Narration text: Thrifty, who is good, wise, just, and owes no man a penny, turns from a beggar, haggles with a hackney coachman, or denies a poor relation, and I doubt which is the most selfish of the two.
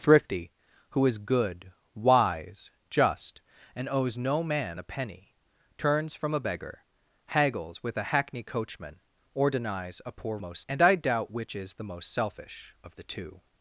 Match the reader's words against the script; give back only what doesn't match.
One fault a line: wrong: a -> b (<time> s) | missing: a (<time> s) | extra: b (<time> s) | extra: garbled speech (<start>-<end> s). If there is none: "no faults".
wrong: relation -> most (10.4 s)